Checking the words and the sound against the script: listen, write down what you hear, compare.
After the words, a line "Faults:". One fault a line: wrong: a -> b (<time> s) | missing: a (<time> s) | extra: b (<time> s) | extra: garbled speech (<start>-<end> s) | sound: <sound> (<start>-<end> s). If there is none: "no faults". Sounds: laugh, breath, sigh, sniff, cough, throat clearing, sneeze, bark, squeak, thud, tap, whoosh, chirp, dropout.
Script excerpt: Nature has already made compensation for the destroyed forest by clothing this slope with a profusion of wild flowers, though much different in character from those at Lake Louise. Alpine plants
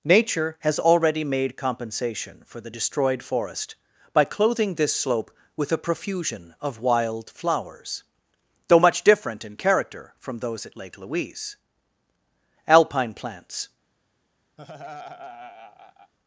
Nature has already made compensation for the destroyed forest by clothing this slope with a profusion of wild flowers, though much different in character from those at Lake Louise. Alpine plants
Faults:
sound: laugh (14.6-16.1 s)